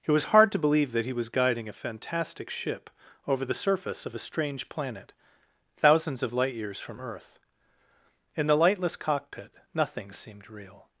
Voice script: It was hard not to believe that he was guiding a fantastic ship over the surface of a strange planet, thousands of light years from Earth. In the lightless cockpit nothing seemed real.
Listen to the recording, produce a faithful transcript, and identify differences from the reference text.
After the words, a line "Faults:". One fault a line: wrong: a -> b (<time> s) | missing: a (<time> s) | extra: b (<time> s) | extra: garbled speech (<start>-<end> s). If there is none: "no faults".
It was hard to believe that he was guiding a fantastic ship over the surface of a strange planet, thousands of light years from Earth. In the lightless cockpit nothing seemed real.
Faults:
missing: not (0.5 s)